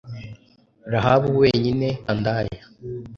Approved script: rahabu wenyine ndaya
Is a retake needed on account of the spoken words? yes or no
no